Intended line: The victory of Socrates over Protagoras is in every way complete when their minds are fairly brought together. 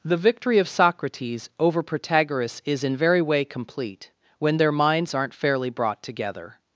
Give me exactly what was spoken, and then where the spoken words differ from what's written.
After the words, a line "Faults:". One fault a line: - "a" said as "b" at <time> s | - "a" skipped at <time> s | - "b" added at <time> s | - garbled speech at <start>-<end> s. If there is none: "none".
The victory of Socrates over Protagoras is in very way complete when their minds aren't fairly brought together.
Faults:
- "every" said as "very" at 3.0 s
- "are" said as "aren't" at 5.1 s